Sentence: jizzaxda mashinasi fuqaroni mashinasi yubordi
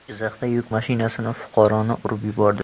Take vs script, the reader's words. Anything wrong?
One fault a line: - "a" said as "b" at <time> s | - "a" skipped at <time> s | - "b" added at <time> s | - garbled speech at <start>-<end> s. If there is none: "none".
- "yuk" added at 0.5 s
- "mashinasi" said as "urib" at 2.1 s